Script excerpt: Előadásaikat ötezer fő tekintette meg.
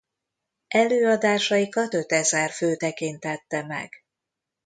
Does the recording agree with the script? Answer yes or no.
yes